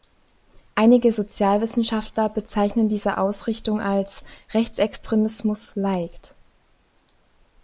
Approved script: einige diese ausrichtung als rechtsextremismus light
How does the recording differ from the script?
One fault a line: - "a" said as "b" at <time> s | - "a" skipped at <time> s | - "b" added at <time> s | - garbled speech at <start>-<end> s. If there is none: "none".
- "sozialwissenschaftler bezeichnen" added at 1.1 s